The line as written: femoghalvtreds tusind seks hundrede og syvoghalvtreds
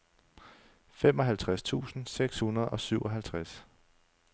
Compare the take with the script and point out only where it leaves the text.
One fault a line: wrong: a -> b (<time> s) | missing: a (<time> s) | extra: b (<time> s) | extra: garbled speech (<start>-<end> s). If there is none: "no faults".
no faults